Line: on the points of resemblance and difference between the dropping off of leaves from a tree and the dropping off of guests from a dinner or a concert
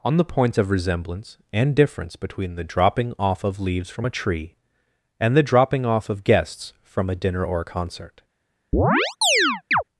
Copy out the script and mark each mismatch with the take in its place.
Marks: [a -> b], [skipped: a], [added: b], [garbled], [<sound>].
on the points of resemblance and difference between the dropping off of leaves from a tree and the dropping off of guests from a dinner or a concert [chirp]